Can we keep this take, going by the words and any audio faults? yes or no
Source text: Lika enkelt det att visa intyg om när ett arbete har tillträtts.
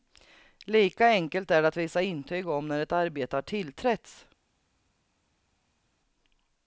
no